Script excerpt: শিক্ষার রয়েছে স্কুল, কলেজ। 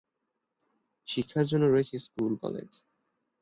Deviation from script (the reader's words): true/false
true